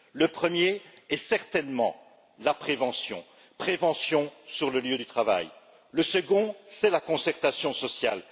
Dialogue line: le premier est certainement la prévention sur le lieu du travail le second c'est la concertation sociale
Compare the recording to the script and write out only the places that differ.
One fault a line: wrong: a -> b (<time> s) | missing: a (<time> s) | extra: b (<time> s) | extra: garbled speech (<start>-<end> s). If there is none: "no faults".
no faults